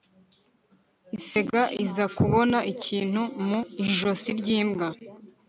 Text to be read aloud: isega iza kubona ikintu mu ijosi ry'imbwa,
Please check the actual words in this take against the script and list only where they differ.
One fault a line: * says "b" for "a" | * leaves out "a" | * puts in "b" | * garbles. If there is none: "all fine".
all fine